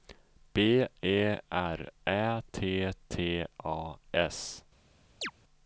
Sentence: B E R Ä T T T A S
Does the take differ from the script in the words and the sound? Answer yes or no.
yes